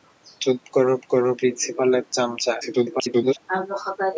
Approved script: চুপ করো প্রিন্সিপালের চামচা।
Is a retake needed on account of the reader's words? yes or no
yes